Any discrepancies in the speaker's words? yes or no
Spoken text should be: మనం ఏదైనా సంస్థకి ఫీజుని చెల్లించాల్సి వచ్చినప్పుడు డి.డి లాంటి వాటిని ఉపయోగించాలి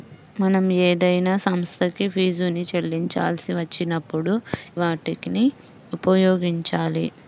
yes